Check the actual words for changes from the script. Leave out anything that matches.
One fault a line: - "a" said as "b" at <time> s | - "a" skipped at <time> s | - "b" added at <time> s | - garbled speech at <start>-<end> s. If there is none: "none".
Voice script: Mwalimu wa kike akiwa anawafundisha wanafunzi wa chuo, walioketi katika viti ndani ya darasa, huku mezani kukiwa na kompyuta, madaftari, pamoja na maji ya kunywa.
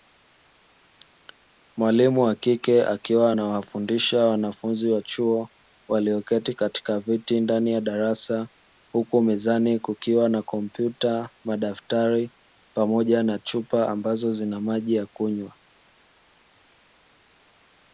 - "chupa ambazo zina" added at 13.4 s